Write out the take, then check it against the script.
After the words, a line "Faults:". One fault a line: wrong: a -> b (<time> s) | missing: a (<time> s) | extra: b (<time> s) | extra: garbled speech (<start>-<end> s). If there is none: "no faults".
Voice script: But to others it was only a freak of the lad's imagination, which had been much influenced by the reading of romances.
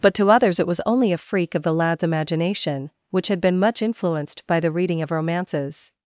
But to others it was only a freak of the lad's imagination, which had been much influenced by the reading of romances.
Faults:
no faults